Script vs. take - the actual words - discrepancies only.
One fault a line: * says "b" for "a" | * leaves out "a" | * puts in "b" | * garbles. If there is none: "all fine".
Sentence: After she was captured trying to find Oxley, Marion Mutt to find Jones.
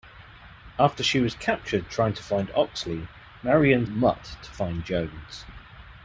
all fine